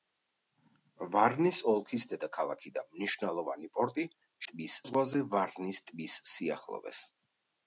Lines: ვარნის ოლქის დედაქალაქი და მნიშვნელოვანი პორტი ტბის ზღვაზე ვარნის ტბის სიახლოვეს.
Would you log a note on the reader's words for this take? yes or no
no